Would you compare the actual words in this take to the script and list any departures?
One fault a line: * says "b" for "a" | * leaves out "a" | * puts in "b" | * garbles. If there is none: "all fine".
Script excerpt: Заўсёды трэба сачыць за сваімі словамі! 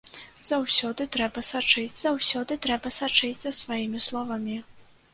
* puts in "заўсёды трэба сачыць"